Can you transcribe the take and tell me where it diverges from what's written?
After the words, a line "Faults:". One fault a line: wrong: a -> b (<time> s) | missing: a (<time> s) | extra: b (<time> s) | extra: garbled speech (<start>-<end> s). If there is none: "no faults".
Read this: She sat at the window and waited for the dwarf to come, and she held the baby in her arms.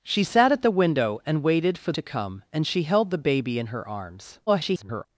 She sat at the window and waited for to come, and she held the baby in her arms. [garbled]
Faults:
missing: the dwarf (1.9 s)
extra: garbled speech (4.5-5.1 s)